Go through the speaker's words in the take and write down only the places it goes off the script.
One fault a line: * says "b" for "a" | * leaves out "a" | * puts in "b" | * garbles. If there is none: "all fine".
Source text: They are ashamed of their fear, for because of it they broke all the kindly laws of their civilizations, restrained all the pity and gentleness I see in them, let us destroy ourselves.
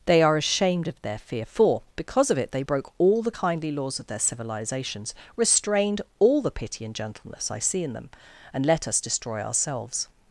* puts in "and"